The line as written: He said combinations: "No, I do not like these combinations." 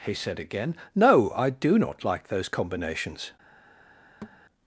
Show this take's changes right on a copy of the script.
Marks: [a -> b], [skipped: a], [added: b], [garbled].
He said [combinations: -> again] "No, I do not like [these -> those] combinations."